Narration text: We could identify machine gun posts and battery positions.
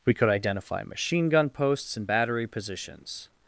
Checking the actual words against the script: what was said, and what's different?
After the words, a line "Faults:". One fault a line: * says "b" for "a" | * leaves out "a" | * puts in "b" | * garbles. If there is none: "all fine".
We could identify machine gun posts and battery positions.
Faults:
all fine